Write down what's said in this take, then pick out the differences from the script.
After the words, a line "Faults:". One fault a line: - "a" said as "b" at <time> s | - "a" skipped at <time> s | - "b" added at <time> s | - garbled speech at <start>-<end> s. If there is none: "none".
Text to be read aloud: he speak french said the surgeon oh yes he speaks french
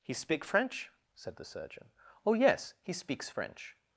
he speak french said the surgeon oh yes he speaks french
Faults:
none